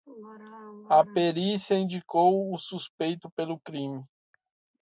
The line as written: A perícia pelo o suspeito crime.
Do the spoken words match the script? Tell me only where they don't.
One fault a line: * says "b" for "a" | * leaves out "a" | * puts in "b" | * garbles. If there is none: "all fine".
* says "indicou" for "pelo"
* puts in "pelo"